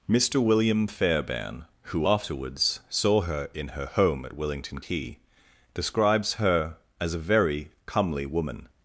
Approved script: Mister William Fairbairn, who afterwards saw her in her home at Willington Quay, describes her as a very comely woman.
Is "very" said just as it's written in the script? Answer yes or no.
yes